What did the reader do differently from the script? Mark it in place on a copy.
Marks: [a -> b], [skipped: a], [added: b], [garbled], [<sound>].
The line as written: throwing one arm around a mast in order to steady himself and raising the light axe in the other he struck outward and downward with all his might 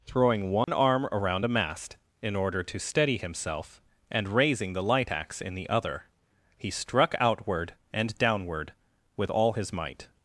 throwing one [dropout] arm around a mast in order to steady himself and raising the light axe in the other he struck outward and downward with all his might